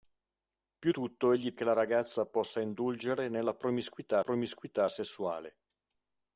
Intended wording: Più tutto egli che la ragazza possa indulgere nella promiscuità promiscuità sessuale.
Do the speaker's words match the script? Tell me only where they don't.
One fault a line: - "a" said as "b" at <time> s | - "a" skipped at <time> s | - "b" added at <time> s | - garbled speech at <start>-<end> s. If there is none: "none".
none